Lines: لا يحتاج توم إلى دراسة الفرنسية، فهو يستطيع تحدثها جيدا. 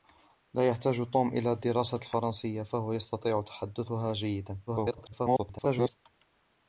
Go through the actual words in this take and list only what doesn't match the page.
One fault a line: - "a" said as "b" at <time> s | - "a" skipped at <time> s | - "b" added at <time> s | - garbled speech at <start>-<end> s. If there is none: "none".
- garbled speech at 4.7-6.0 s